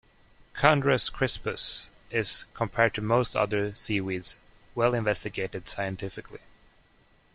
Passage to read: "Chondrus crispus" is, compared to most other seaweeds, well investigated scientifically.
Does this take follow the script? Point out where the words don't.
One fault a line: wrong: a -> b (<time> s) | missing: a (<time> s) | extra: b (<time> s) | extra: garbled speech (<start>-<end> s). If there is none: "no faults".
no faults